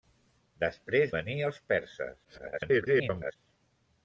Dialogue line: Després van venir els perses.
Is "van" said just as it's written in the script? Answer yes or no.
no